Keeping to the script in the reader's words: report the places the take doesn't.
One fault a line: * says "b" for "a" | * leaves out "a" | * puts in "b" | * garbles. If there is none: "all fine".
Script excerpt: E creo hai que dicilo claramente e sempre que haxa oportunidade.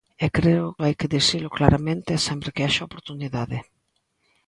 all fine